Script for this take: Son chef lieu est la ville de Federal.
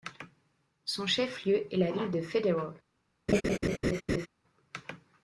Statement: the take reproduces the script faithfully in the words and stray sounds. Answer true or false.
false